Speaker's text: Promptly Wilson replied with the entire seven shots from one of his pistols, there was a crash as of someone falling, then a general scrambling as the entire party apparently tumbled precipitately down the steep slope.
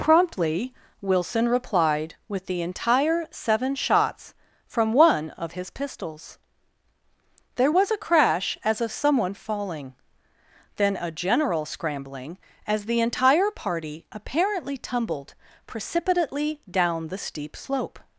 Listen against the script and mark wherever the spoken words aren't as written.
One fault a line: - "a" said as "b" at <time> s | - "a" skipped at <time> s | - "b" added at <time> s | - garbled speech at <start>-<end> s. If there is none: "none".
none